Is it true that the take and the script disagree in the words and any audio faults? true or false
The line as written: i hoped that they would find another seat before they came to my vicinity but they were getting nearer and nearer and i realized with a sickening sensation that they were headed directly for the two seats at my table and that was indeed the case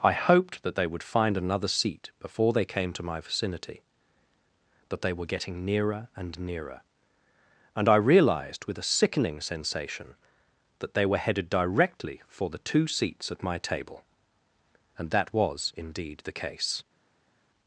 true